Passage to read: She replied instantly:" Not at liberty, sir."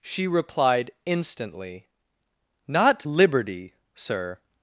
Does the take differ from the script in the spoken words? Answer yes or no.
yes